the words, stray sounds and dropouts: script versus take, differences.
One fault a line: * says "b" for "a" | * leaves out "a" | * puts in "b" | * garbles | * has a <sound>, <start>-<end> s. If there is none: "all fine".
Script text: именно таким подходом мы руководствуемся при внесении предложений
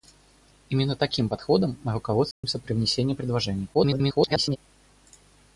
* has a dropout, 2.3-2.4 s
* garbles